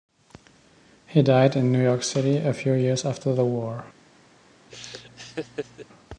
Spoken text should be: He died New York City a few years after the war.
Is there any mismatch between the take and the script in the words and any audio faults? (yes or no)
yes